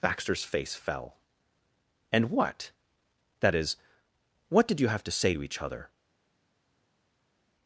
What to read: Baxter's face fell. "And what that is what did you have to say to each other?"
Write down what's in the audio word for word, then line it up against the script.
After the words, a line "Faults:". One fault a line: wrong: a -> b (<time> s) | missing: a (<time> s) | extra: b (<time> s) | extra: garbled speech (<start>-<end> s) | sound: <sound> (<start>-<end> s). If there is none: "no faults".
Baxter's face fell. "And what that is what did you have to say to each other?"
Faults:
no faults